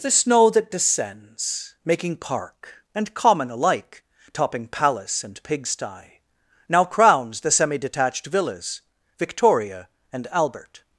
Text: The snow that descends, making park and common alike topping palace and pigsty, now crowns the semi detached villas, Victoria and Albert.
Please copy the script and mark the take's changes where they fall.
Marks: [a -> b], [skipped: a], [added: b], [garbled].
The snow that descends, making park and common alike topping palace and pigsty, now crowns the semi detached villas, Victoria and Albert.